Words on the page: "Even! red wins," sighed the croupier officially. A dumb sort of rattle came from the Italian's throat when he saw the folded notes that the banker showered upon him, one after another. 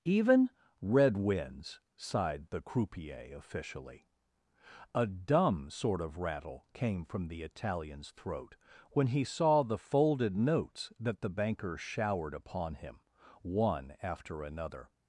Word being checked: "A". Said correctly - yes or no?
yes